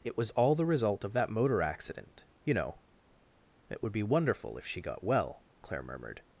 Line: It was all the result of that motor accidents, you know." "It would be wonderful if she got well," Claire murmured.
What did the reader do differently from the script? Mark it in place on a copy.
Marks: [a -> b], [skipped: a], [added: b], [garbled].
It was all the result of that motor [accidents, -> accident] you know." "It would be wonderful if she got well," Claire murmured.